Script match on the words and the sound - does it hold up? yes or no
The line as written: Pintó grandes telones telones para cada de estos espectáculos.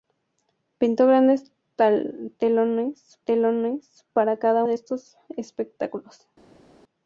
yes